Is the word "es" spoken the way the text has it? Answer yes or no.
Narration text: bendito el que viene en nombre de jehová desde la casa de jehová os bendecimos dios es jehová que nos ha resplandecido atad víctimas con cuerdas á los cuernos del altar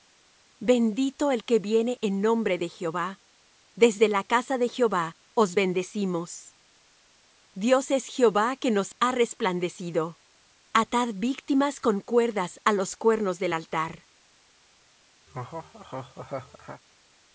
yes